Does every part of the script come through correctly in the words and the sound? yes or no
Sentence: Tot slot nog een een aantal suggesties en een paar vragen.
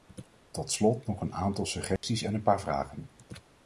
no